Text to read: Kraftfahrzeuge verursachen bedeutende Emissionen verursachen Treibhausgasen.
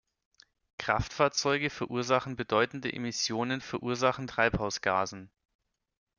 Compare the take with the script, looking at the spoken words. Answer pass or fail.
pass